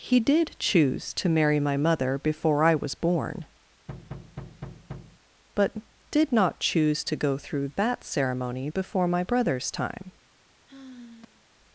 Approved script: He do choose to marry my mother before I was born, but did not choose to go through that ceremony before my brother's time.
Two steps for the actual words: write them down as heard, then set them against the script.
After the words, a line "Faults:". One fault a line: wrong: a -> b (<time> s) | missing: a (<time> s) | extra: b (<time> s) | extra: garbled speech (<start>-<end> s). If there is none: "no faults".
He did choose to marry my mother before I was born, but did not choose to go through that ceremony before my brother's time.
Faults:
wrong: do -> did (0.2 s)